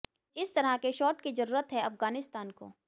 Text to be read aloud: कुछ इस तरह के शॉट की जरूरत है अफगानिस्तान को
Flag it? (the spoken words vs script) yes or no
no